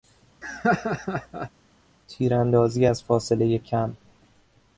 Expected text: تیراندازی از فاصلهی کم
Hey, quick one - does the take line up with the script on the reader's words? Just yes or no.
yes